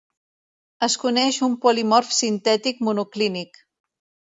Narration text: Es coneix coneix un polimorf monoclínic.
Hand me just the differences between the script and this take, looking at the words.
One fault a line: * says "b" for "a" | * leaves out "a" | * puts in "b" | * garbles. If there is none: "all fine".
* leaves out "coneix"
* puts in "sintètic"